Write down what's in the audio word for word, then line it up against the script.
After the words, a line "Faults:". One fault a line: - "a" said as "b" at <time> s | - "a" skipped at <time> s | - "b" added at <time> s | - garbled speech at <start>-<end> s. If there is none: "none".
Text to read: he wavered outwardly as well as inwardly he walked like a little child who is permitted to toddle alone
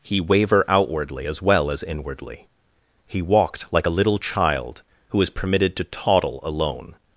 he waver outwardly as well as inwardly he walked like a little child who is permitted to toddle alone
Faults:
- "wavered" said as "waver" at 0.2 s